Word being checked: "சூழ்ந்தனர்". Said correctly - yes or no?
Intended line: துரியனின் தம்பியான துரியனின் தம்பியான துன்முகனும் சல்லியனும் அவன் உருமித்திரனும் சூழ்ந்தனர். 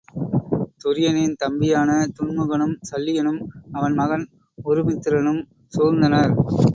yes